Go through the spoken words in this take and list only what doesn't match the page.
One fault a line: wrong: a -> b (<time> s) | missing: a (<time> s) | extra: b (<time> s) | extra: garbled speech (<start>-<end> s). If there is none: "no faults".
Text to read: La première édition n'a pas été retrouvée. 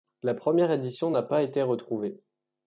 no faults